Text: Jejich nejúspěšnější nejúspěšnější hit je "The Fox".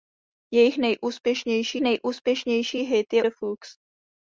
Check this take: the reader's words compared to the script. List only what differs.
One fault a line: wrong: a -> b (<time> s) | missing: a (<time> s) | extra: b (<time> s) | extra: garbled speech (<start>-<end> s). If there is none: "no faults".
no faults